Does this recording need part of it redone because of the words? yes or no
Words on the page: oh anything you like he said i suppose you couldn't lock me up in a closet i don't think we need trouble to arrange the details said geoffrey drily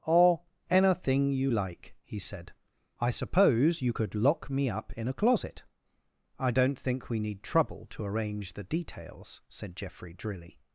yes